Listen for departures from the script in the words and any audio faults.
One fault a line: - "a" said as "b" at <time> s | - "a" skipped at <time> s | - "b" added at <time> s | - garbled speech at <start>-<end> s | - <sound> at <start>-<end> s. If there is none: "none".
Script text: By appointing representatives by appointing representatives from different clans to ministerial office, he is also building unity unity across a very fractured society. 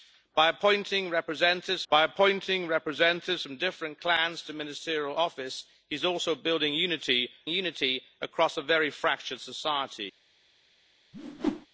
- whoosh at 11.1-11.7 s